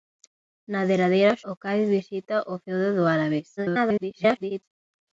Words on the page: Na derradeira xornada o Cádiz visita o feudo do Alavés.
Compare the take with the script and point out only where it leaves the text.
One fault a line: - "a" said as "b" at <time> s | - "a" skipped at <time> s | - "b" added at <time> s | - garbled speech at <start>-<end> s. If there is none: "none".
- "xornada" skipped at 1.4 s
- garbled speech at 3.6-4.6 s